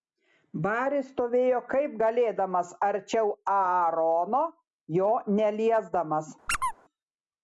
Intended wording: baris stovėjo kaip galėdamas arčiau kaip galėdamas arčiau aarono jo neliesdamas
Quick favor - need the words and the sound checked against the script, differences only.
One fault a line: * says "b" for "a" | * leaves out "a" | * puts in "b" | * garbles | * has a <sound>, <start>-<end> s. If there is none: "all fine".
* leaves out "kaip galėdamas arčiau"
* has a squeak, 6.5-6.7 s